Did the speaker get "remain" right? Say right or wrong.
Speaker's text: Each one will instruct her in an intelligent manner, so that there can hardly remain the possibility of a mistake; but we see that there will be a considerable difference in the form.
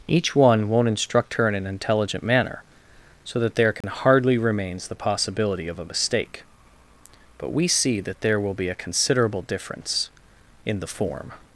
wrong